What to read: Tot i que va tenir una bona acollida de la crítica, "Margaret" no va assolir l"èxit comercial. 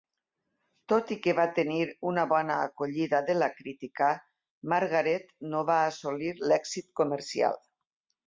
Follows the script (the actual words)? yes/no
yes